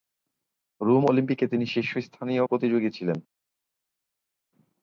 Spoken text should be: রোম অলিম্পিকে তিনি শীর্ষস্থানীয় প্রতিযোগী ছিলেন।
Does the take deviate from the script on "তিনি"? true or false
false